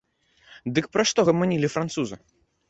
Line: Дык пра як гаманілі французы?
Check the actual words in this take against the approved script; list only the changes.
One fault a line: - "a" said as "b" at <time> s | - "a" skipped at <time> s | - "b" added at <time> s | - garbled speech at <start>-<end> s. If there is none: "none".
- "як" said as "што" at 1.1 s